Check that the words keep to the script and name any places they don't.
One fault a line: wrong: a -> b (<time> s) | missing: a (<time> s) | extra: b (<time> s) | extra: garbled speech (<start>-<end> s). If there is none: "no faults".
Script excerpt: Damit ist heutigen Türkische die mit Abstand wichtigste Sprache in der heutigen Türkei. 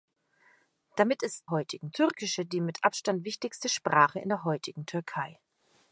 no faults